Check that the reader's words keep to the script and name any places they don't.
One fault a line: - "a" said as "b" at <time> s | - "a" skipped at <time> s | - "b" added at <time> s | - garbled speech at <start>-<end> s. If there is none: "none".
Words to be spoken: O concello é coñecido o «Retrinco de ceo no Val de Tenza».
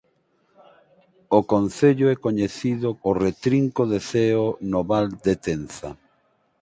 none